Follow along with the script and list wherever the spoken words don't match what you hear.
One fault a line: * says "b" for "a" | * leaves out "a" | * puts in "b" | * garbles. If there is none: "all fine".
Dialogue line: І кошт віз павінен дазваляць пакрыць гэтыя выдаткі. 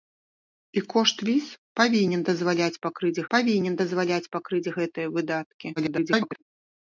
* puts in "павінен дазваляць пакрыць"
* garbles